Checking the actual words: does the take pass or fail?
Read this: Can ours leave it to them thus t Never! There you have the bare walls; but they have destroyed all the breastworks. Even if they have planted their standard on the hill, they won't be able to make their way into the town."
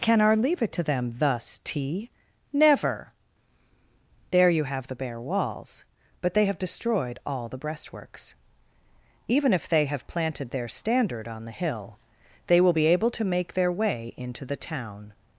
fail